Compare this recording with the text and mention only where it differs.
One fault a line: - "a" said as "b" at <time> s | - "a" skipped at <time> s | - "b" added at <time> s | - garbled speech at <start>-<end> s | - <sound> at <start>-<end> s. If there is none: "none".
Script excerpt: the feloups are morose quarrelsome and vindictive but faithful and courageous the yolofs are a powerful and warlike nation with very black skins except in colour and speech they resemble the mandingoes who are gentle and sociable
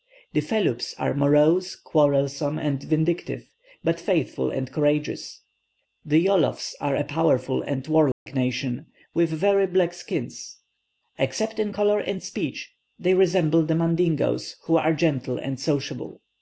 - dropout at 8.1-8.3 s